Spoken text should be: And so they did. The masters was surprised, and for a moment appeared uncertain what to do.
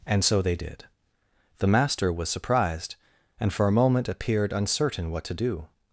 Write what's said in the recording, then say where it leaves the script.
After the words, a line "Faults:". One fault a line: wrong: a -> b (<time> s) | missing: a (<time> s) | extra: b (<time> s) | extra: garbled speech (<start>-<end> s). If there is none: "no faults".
And so they did. The master was surprised, and for a moment appeared uncertain what to do.
Faults:
wrong: masters -> master (1.7 s)